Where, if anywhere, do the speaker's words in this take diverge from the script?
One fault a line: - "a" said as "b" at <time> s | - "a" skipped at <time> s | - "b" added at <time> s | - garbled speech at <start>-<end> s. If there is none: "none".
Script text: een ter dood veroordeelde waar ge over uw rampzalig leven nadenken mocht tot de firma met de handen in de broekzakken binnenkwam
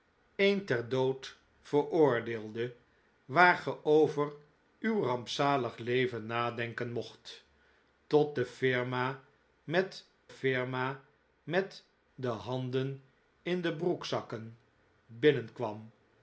- "firma met" added at 10.3 s